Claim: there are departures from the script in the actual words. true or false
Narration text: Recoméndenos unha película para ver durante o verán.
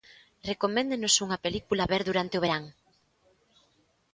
true